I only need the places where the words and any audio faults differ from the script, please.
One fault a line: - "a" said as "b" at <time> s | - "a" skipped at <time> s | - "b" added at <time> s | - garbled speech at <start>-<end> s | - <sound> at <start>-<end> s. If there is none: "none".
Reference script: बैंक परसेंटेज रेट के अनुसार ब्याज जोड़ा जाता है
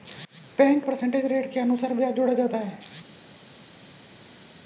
none